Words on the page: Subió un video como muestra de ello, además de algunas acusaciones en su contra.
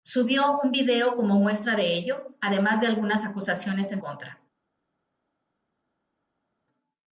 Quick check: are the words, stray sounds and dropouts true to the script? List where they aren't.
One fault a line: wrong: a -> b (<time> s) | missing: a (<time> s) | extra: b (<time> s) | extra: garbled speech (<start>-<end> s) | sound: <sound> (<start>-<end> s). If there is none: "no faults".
missing: su (4.0 s)